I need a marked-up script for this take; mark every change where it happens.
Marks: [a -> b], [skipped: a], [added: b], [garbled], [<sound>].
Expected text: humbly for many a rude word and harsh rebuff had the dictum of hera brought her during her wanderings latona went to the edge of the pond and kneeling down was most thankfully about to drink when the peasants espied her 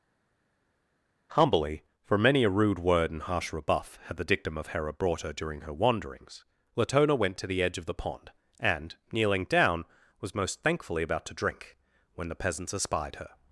humbly for many a rude word and harsh rebuff had the dictum of hera brought her during her wanderings latona went to the edge of the pond and kneeling down was most thankfully about to drink when the peasants espied her